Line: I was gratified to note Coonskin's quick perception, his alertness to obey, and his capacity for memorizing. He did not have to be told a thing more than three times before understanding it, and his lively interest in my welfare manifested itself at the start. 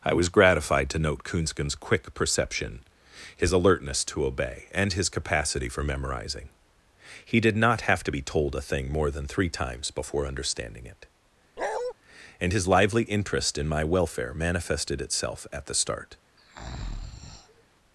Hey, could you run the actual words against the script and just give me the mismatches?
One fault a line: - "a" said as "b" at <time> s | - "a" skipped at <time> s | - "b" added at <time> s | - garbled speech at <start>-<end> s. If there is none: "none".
none